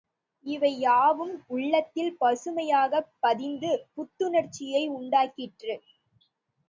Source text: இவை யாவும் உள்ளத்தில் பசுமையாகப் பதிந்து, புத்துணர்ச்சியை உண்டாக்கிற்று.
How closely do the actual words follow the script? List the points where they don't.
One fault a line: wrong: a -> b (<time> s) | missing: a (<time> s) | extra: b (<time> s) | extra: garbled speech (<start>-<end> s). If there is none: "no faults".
no faults